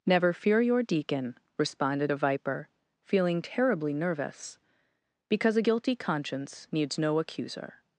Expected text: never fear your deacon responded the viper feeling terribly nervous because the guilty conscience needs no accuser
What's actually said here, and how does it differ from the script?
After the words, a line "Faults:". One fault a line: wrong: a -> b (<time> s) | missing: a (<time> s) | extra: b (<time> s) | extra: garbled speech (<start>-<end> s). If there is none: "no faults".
never fear your deacon responded a viper feeling terribly nervous because a guilty conscience needs no accuser
Faults:
wrong: the -> a (2.1 s)
wrong: the -> a (5.6 s)